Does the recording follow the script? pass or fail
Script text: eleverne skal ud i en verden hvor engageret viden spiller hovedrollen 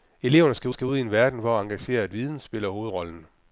fail